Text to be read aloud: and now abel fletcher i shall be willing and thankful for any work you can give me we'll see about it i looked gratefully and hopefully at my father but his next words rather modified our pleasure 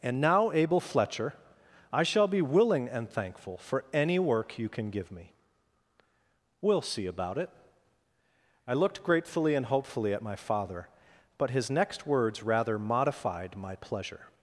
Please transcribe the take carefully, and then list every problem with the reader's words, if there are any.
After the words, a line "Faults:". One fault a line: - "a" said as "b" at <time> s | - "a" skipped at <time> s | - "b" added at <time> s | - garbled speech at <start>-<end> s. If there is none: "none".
and now abel fletcher i shall be willing and thankful for any work you can give me we'll see about it i looked gratefully and hopefully at my father but his next words rather modified my pleasure
Faults:
- "our" said as "my" at 13.5 s